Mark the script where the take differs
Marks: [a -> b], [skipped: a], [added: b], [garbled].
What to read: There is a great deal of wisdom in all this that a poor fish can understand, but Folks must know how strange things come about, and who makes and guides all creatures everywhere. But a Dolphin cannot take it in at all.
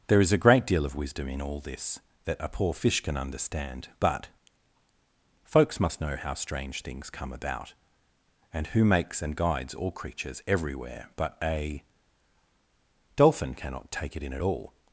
There is a great deal of wisdom in all this that a poor fish can understand, but Folks must know how strange things come about, and who makes and guides all creatures everywhere. But a Dolphin cannot take it in at all.